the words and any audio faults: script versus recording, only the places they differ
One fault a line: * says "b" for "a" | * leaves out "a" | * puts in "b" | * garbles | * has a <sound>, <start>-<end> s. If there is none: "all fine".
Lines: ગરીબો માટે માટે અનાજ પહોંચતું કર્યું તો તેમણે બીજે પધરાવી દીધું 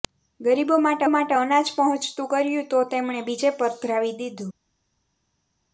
all fine